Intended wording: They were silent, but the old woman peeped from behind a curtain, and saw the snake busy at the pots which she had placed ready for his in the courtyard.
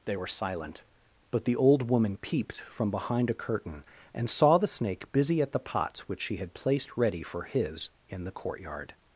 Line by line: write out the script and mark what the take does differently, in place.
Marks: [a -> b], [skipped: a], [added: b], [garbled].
They were silent, but the old woman peeped from behind a curtain, and saw the snake busy at the pots which she had placed ready for his in the courtyard.